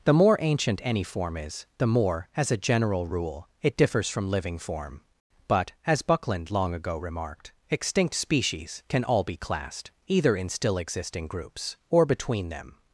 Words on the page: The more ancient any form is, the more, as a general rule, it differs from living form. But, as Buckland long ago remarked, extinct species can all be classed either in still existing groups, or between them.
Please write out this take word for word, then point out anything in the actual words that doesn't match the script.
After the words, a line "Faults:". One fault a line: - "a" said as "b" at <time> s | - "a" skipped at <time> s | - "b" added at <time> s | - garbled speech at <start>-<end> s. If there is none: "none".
The more ancient any form is, the more, as a general rule, it differs from living form. But, as Buckland long ago remarked, extinct species can all be classed either in still existing groups, or between them.
Faults:
none